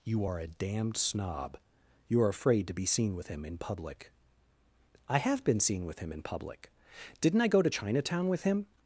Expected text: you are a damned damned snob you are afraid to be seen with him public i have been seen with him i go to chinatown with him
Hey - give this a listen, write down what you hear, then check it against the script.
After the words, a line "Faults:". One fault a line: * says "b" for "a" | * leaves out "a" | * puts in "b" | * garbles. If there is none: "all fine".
you are a damned snob you are afraid to be seen with him in public i have been seen with him in public didn't i go to chinatown with him
Faults:
* leaves out "damned"
* puts in "in"
* puts in "in public didn't"